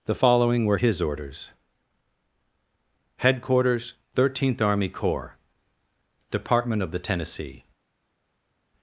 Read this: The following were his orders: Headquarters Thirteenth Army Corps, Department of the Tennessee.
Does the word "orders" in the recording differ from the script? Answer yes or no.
no